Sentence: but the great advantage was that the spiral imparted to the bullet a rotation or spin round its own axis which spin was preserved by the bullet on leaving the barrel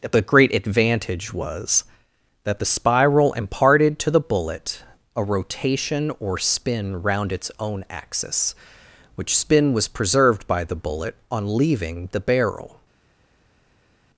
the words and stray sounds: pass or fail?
fail